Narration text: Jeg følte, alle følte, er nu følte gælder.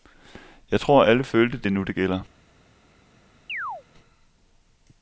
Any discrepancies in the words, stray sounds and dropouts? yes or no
yes